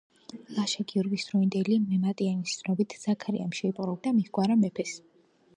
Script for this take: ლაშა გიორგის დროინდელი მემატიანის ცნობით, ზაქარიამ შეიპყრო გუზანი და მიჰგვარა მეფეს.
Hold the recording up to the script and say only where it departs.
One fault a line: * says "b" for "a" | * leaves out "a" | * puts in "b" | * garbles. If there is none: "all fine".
* leaves out "გუზანი"